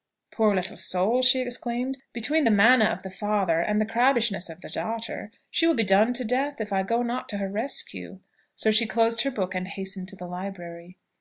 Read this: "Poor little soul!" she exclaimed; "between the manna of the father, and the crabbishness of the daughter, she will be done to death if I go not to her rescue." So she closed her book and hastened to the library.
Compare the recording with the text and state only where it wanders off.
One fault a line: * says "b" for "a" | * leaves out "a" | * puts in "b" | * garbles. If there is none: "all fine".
all fine